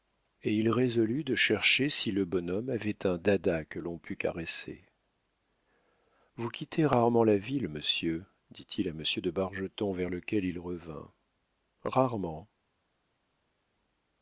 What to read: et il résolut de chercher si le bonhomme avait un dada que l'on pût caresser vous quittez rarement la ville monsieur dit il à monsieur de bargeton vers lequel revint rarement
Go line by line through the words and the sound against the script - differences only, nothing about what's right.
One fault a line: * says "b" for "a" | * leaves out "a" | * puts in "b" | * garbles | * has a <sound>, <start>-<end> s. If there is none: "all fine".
* puts in "il"